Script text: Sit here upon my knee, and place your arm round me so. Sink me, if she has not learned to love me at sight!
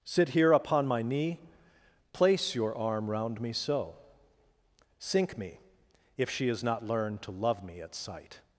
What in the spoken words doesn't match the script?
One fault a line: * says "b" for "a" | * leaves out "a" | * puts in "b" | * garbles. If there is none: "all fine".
* leaves out "and"